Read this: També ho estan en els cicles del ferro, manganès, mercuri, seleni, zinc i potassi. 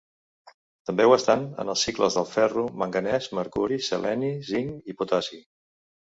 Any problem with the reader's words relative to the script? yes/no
no